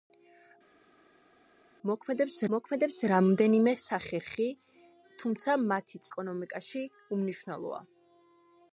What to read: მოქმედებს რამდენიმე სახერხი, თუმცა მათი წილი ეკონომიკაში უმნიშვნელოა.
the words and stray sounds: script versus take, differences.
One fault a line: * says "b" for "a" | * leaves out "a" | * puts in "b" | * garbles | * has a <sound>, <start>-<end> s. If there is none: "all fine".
* puts in "მოქმედებს"
* leaves out "წილი"